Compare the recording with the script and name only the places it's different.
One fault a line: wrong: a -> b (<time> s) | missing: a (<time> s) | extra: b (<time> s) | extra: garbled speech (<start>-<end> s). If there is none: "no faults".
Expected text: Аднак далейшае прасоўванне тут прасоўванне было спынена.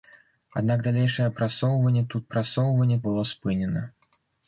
no faults